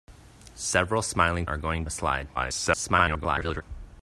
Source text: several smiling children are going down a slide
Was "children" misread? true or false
true